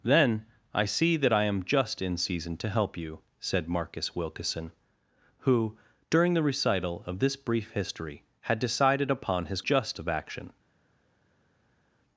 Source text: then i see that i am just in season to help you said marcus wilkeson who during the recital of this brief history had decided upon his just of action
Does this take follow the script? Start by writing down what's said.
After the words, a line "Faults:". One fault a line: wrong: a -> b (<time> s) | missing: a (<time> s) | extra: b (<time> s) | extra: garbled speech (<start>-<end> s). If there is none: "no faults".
then i see that i am just in season to help you said marcus wilkeson who during the recital of this brief history had decided upon his just of action
Faults:
no faults